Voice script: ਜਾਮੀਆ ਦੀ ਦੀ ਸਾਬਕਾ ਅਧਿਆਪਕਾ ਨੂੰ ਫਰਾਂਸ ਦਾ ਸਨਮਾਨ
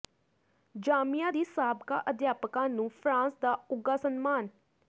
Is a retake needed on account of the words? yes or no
yes